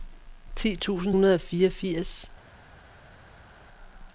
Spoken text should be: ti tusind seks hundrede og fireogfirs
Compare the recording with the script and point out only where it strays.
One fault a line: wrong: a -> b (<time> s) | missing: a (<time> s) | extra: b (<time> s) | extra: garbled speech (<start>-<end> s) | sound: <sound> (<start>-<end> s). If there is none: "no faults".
missing: seks (1.1 s)